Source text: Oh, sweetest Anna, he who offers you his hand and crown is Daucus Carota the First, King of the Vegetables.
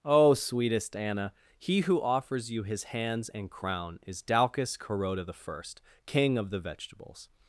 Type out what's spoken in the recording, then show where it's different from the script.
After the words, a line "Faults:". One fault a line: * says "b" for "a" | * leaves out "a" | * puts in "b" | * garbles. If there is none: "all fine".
Oh, sweetest Anna, he who offers you his hands and crown is Daucus Carota the First, King of the Vegetables.
Faults:
* says "hands" for "hand"